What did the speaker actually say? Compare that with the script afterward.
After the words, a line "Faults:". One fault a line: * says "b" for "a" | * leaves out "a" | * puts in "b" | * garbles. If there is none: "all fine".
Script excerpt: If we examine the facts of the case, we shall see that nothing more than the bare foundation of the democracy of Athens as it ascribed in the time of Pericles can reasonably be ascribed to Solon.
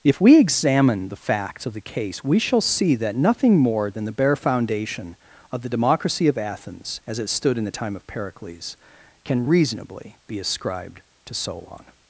If we examine the facts of the case, we shall see that nothing more than the bare foundation of the democracy of Athens as it stood in the time of Pericles can reasonably be ascribed to Solon.
Faults:
* says "stood" for "ascribed"